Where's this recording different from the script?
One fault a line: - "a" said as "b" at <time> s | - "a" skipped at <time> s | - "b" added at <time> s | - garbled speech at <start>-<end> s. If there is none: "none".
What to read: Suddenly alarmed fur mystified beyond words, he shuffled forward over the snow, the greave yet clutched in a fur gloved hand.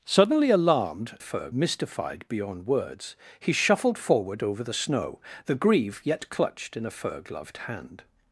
none